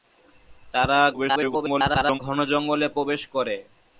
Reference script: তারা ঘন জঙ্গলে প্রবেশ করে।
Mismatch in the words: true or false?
true